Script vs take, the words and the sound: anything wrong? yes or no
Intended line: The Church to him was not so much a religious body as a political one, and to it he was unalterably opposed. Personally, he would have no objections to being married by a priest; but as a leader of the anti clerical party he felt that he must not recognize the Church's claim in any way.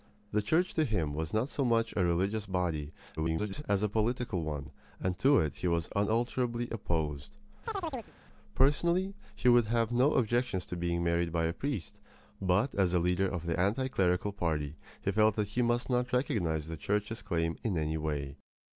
yes